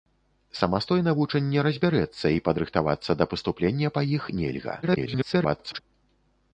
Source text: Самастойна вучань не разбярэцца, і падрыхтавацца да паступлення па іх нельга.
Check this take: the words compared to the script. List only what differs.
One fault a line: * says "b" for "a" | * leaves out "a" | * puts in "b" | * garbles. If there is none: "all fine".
* garbles